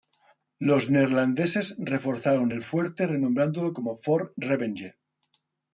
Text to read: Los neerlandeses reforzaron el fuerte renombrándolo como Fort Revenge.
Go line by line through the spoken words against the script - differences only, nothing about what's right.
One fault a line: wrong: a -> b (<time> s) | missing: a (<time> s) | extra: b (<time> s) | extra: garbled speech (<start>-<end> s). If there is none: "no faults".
no faults